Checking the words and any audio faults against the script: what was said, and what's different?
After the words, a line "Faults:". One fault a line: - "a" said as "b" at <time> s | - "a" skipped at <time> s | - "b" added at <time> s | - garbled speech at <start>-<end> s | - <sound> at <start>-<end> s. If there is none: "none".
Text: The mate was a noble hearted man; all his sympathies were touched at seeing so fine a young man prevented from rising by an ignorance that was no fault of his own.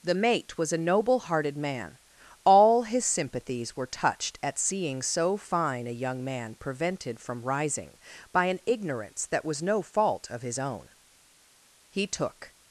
The mate was a noble hearted man; all his sympathies were touched at seeing so fine a young man prevented from rising by an ignorance that was no fault of his own. He took
Faults:
- "He took" added at 11.9 s